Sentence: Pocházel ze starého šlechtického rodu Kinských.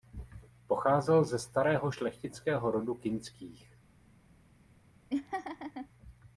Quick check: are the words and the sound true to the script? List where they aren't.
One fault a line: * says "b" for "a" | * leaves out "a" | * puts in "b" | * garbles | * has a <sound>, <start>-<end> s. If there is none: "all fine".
* has a laugh, 5.1-5.9 s